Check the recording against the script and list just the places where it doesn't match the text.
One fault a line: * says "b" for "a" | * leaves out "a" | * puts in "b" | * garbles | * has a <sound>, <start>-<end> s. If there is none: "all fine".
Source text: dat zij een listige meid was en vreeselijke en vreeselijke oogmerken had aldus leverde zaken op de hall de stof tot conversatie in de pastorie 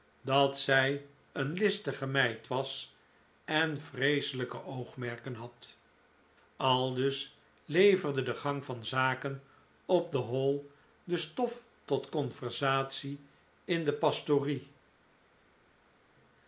* leaves out "en vreeselijke"
* puts in "de gang van"